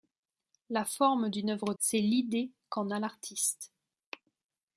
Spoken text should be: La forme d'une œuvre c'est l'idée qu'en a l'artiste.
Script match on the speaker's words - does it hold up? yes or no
yes